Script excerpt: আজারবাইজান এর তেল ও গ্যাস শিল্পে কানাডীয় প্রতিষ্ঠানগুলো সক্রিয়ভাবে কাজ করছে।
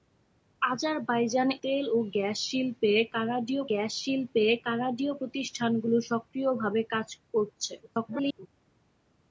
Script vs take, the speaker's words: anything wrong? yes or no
yes